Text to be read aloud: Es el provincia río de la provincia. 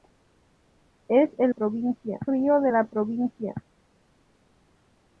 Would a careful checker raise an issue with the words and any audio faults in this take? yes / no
no